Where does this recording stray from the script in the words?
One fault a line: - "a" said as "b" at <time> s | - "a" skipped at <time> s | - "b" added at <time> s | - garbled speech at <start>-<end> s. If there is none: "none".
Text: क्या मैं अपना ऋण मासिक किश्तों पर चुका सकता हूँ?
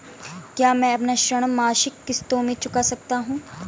- "पर" said as "में" at 2.4 s